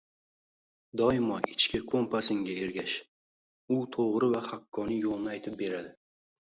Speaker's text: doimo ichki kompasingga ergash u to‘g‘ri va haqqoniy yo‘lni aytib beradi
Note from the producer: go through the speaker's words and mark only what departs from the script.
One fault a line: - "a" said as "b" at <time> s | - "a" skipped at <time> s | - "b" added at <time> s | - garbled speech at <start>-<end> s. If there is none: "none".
none